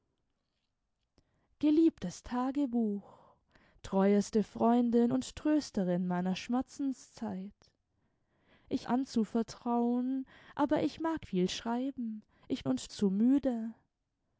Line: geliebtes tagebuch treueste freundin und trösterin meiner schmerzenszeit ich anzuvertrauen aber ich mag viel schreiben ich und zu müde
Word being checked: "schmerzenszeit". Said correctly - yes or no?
yes